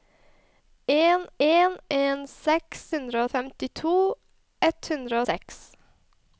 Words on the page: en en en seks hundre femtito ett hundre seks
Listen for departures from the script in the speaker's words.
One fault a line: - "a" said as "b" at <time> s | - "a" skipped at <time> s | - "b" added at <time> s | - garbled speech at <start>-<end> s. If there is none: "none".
none